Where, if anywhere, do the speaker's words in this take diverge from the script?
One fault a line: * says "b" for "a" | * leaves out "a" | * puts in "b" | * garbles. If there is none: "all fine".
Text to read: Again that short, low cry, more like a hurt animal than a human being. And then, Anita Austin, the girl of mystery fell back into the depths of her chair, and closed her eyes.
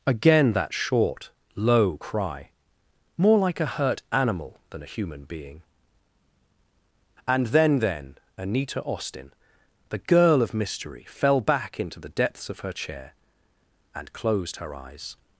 * puts in "then"